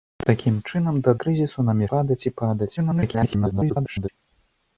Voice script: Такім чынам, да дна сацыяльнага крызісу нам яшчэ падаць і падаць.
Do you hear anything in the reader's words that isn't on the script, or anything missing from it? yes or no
yes